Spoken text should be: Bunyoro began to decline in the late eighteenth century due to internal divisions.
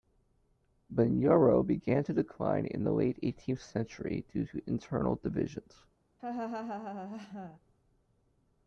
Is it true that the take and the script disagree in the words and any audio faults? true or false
true